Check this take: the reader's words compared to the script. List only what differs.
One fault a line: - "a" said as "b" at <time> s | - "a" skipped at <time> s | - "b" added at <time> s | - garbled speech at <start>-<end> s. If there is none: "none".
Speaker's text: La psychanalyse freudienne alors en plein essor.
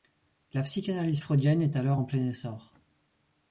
- "est" added at 1.6 s